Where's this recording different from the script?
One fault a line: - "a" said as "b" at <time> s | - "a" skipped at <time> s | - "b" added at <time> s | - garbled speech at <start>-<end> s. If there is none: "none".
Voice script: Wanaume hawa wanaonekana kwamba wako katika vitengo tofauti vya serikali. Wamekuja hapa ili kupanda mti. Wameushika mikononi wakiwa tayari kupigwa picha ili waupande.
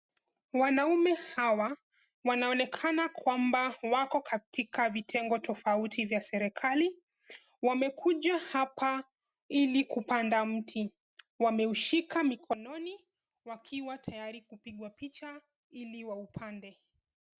none